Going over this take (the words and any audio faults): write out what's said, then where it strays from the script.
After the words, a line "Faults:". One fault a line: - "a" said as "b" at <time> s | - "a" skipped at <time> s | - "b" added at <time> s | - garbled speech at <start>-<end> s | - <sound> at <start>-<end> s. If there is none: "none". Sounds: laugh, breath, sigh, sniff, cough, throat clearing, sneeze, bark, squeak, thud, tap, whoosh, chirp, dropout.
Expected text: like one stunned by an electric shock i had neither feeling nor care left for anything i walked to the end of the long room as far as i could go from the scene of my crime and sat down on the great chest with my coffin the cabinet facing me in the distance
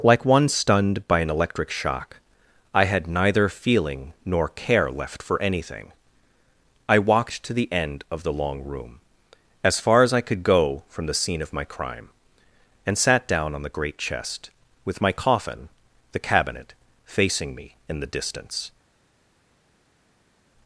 like one stunned by an electric shock i had neither feeling nor care left for anything i walked to the end of the long room as far as i could go from the scene of my crime and sat down on the great chest with my coffin the cabinet facing me in the distance
Faults:
none